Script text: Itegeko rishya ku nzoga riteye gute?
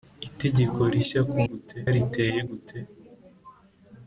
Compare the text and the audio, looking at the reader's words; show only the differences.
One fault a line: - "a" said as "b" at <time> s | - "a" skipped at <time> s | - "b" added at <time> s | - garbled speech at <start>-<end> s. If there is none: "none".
- "nzoga" said as "gute" at 1.5 s